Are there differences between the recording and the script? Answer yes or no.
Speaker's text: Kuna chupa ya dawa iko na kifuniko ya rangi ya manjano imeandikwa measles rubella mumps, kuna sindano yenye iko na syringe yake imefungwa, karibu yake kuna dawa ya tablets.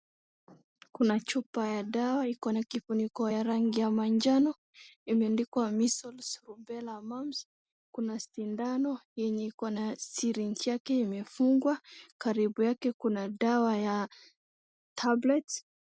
no